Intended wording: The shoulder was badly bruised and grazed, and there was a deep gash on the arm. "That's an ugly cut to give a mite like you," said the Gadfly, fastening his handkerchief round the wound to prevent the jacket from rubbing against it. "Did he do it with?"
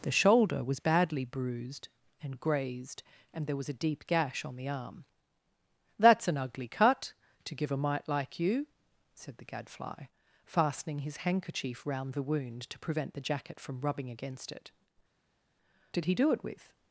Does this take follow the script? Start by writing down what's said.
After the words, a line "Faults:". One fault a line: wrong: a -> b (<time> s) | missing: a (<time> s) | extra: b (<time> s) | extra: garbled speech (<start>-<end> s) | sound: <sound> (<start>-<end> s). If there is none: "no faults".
The shoulder was badly bruised and grazed, and there was a deep gash on the arm. "That's an ugly cut to give a mite like you," said the Gadfly, fastening his handkerchief round the wound to prevent the jacket from rubbing against it. "Did he do it with?"
Faults:
no faults